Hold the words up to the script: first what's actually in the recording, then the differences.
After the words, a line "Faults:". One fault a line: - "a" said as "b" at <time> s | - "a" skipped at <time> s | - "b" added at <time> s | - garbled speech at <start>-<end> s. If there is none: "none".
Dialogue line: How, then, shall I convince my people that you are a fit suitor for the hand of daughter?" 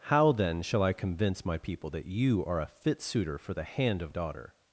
How, then, shall I convince my people that you are a fit suitor for the hand of daughter?"
Faults:
none